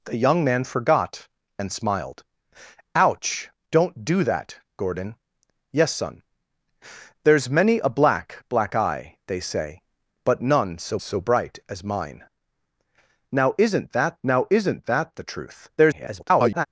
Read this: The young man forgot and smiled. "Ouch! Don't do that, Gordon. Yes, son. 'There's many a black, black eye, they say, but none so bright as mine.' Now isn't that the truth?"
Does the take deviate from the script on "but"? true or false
false